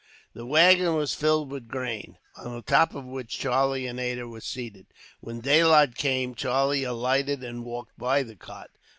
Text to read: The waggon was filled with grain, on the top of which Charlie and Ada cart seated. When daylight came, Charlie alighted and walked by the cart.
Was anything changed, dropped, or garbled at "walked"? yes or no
no